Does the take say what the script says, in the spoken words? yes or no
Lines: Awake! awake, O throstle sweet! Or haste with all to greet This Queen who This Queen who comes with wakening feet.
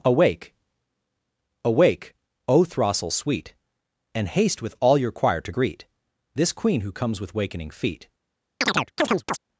no